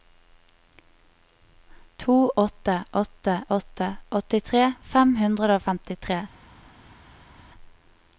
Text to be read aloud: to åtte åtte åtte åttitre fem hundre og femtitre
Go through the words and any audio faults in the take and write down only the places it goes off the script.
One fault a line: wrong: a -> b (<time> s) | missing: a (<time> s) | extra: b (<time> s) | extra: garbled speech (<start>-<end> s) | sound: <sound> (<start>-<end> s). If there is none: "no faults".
no faults